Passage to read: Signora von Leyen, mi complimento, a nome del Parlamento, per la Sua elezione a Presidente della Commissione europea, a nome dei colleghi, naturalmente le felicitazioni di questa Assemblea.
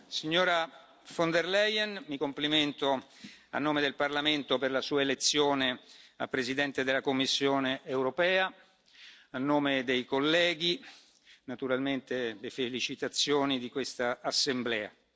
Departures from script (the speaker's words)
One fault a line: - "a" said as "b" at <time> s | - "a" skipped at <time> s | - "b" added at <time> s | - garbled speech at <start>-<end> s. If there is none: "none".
- "der" added at 1.3 s